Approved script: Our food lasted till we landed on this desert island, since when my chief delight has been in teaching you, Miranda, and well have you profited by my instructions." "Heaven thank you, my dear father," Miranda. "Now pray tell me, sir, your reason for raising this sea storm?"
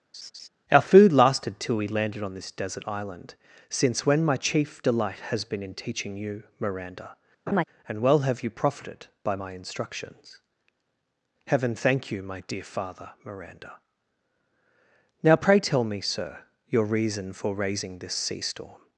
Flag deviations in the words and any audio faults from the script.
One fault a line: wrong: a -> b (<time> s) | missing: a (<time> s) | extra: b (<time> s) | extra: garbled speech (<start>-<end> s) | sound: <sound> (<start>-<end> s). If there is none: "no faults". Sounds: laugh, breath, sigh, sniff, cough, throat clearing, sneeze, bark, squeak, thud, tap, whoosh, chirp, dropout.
sound: laugh (0.1-0.5 s)
sound: laugh (7.5-7.6 s)